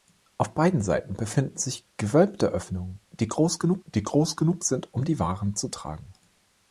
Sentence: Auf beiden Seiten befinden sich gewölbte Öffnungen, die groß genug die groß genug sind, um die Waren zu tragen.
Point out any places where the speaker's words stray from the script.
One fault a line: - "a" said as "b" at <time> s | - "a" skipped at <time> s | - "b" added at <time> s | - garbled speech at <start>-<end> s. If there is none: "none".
none